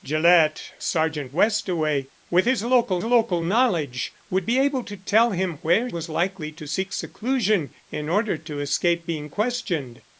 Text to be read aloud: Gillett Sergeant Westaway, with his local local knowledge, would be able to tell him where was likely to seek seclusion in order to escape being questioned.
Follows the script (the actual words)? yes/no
yes